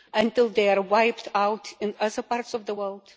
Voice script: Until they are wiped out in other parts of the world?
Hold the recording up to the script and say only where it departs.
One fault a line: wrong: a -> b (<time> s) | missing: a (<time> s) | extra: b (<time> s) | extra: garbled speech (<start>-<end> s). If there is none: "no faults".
no faults